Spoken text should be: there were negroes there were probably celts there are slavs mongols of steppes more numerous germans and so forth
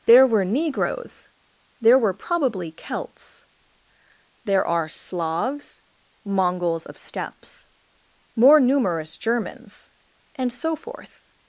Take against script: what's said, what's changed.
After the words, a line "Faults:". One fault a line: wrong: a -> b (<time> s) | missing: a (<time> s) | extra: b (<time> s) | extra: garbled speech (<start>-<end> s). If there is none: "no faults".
there were negroes there were probably celts there are slavs mongols of steppes more numerous germans and so forth
Faults:
no faults